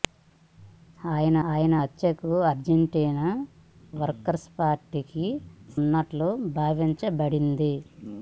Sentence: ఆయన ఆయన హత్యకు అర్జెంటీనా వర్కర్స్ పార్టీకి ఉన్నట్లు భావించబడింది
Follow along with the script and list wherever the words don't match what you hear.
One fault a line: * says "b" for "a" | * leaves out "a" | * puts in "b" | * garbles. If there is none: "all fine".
all fine